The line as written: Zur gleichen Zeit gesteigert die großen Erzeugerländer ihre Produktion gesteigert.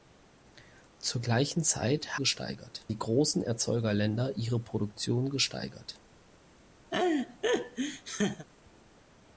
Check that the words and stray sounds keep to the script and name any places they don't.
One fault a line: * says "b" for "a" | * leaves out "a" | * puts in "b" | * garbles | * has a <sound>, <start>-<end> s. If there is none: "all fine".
* has a laugh, 6.9-8.5 s